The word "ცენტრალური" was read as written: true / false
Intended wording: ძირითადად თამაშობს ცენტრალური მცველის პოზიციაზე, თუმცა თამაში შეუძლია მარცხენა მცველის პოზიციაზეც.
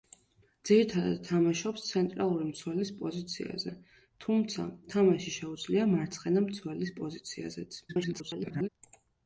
true